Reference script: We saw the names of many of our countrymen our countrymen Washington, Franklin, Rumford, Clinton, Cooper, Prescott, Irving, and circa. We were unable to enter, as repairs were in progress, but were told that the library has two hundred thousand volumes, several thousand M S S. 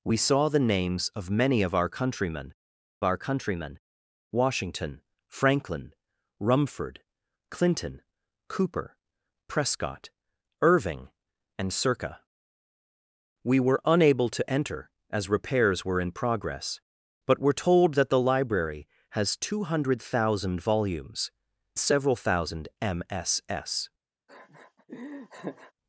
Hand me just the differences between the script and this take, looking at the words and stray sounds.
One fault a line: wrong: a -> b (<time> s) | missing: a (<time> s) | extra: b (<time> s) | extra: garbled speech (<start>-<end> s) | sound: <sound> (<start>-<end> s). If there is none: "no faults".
sound: laugh (24.3-25.7 s)